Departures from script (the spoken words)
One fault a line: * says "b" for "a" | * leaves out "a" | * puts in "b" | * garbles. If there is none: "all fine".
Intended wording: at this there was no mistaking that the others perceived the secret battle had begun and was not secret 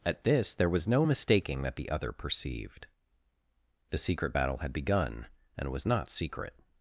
* says "other" for "others"